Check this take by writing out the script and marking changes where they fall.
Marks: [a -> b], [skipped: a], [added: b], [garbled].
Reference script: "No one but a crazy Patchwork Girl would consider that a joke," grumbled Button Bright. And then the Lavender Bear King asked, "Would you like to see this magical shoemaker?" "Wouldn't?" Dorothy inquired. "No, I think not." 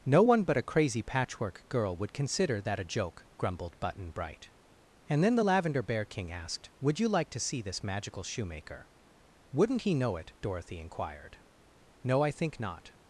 "No one but a crazy Patchwork Girl would consider that a joke," grumbled Button Bright. And then the Lavender Bear King asked, "Would you like to see this magical shoemaker?" "Wouldn't?" [added: he know it] Dorothy inquired. "No, I think not."